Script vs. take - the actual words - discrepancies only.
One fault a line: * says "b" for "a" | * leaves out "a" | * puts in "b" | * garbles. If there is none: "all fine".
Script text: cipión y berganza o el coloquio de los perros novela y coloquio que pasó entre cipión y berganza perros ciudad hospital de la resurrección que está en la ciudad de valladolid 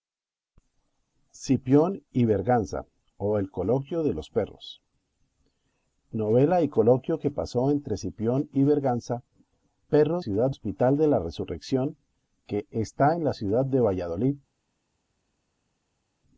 all fine